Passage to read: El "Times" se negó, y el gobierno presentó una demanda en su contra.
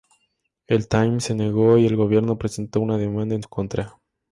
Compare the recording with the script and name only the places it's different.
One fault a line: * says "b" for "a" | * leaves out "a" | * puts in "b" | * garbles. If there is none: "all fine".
all fine